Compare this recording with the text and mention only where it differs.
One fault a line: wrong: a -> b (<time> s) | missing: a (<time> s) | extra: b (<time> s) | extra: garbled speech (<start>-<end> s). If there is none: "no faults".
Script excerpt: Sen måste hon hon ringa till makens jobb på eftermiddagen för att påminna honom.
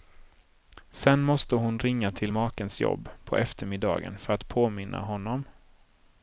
missing: hon (1.8 s)